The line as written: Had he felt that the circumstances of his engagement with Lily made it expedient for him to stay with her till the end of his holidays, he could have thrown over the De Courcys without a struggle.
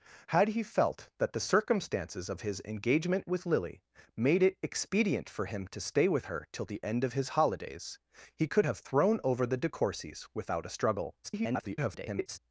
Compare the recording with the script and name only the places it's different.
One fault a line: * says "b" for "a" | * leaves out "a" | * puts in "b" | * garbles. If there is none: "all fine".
* garbles